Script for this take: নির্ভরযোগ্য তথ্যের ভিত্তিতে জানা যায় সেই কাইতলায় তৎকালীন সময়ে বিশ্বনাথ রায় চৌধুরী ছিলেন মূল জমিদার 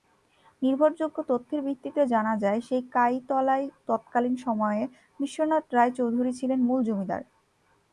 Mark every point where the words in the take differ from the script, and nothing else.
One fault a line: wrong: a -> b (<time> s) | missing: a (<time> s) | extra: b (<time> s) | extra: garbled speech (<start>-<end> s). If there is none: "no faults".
no faults